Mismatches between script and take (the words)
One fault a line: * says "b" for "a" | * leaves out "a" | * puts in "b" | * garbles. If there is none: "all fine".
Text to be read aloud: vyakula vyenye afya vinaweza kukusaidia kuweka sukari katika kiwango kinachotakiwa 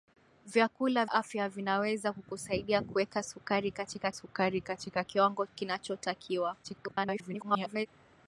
* leaves out "vyenye"
* puts in "sukari katika"
* garbles